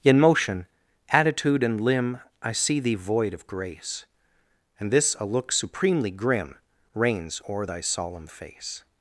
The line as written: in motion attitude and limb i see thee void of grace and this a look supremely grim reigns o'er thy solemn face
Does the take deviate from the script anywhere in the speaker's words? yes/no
no